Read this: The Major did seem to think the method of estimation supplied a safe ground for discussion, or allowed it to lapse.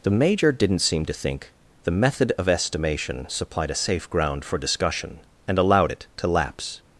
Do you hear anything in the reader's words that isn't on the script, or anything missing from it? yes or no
yes